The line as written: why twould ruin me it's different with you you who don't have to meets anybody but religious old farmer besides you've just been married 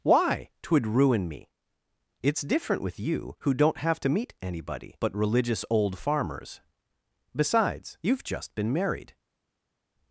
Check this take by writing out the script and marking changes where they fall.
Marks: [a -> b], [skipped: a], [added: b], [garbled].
why twould ruin me it's different with you [skipped: you] who don't have to [meets -> meet] anybody but religious old [farmer -> farmers] besides you've just been married